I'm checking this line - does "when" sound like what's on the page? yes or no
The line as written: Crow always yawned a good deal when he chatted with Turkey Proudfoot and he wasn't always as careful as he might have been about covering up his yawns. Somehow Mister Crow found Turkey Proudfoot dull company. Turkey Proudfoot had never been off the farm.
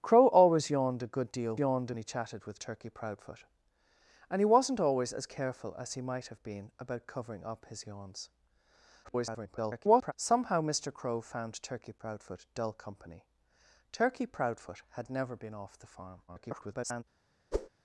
no